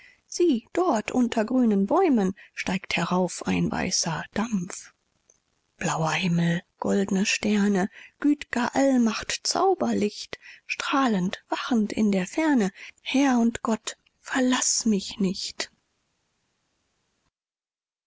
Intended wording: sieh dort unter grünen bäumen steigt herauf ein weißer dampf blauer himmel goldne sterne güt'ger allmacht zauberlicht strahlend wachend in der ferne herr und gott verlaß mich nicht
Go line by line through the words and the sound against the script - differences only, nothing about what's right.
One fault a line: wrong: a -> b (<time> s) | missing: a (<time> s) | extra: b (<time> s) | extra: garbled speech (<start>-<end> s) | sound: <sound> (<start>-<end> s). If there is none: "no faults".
no faults